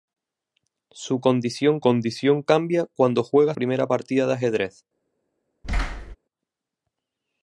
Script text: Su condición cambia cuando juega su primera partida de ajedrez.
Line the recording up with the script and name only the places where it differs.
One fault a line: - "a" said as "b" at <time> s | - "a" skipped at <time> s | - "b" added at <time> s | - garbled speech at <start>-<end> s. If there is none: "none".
- "condición" added at 1.8 s
- "su" skipped at 3.5 s